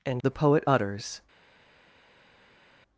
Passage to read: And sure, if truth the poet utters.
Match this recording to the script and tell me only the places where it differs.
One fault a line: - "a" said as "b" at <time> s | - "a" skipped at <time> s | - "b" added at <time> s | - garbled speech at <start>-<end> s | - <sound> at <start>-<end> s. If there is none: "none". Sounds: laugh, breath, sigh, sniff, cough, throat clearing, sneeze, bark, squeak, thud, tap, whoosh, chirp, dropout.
- "sure if truth" skipped at 0.2 s